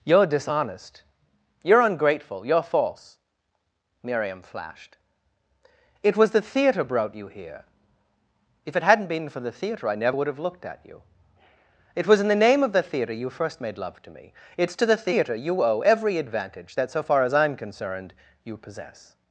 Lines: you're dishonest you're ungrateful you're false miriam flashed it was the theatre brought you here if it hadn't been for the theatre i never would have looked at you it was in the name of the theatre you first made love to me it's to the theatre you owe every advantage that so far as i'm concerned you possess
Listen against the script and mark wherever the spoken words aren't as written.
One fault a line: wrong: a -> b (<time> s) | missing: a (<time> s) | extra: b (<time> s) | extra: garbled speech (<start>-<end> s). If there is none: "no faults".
no faults